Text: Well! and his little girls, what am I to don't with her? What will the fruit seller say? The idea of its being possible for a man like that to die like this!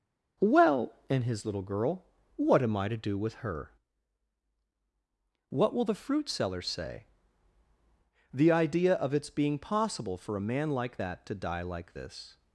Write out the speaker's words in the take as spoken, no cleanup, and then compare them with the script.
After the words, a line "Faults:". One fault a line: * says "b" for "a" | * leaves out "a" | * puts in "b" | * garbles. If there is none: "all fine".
Well! and his little girl, what am I to do with her? What will the fruit seller say? The idea of its being possible for a man like that to die like this!
Faults:
* says "girl" for "girls"
* says "do" for "don't"